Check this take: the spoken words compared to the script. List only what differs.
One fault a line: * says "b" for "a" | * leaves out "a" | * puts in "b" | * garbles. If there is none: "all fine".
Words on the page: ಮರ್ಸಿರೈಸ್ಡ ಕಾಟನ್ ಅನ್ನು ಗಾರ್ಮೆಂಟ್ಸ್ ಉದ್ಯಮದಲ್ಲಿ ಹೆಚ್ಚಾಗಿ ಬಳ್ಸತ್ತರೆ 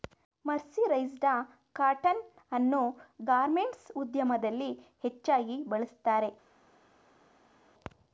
all fine